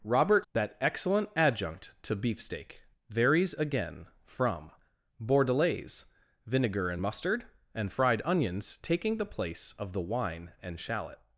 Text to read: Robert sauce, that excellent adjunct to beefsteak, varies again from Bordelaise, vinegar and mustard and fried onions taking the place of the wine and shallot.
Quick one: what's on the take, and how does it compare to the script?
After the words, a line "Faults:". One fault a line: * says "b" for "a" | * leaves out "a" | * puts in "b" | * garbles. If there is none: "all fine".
Robert that excellent adjunct to beefsteak, varies again from Bordelaise, vinegar and mustard and fried onions taking the place of the wine and shallot.
Faults:
* leaves out "sauce"